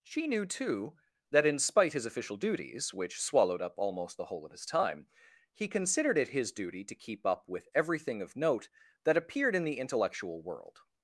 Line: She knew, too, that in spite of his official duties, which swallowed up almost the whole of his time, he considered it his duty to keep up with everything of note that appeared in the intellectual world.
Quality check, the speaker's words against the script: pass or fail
fail